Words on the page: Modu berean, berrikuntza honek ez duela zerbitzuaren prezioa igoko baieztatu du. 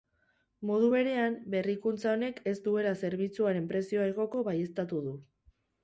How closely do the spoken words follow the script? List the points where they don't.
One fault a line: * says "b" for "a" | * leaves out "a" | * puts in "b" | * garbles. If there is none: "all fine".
all fine